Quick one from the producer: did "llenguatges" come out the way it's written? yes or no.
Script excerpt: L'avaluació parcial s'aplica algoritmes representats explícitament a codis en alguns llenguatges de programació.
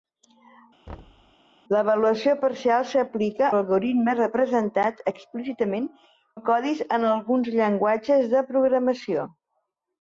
yes